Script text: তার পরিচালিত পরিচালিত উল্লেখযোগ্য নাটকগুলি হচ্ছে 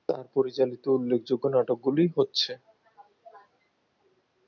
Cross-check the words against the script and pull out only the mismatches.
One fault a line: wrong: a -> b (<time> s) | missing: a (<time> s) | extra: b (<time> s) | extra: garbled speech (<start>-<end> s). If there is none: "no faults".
missing: পরিচালিত (0.8 s)